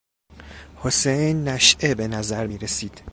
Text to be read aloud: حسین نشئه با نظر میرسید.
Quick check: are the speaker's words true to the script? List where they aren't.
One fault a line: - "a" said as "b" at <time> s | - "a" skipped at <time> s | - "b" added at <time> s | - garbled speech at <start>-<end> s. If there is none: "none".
- "با" said as "به" at 1.9 s